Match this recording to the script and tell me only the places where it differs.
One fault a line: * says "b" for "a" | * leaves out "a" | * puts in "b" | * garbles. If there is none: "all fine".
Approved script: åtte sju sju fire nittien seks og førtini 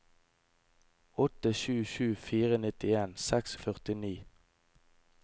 all fine